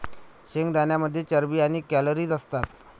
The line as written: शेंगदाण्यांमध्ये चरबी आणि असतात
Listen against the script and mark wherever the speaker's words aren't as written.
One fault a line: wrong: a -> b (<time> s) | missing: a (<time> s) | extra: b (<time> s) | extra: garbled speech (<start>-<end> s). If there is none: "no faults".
extra: कॅलरीज (1.9 s)